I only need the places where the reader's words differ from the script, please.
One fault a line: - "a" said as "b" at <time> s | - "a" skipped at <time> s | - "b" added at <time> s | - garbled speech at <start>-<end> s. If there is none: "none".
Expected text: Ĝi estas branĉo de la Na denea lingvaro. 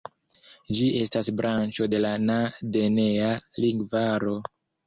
none